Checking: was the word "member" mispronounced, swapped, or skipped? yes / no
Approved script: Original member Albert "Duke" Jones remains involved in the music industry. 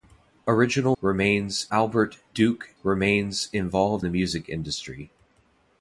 yes